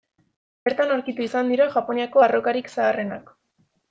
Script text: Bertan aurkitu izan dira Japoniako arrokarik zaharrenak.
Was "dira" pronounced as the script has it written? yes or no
yes